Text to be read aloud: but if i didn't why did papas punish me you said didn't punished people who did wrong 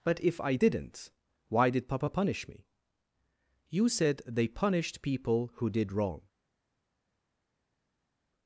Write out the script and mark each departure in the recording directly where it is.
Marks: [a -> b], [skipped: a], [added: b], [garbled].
but if i didn't why did [papas -> papa] punish me you said [didn't -> they] punished people who did wrong